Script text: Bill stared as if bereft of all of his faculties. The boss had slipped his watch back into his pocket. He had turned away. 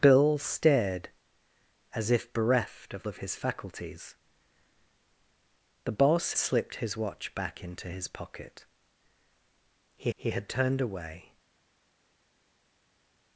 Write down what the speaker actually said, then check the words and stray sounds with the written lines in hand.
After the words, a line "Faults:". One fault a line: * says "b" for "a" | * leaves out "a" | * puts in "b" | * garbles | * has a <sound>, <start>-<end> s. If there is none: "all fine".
Bill stared as if bereft of of his faculties. The boss slipped his watch back into his pocket. He he had turned away.
Faults:
* leaves out "all"
* leaves out "had"
* puts in "he"